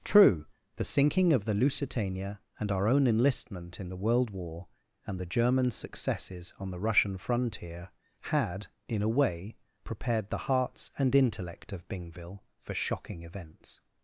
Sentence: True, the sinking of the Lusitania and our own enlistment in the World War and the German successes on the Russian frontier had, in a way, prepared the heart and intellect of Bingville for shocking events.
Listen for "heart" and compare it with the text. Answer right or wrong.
wrong